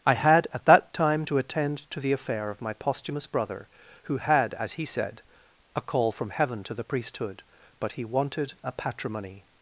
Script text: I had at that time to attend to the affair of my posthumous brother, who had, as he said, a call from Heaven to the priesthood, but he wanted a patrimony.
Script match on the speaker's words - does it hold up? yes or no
yes